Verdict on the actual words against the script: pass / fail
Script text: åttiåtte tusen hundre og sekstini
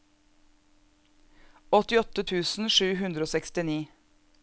fail